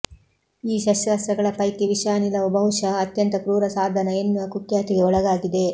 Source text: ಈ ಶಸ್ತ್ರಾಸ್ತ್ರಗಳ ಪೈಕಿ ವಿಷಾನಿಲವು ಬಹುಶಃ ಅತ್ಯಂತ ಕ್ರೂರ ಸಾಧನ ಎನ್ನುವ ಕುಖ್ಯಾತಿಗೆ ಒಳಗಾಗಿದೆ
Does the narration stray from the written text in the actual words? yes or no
no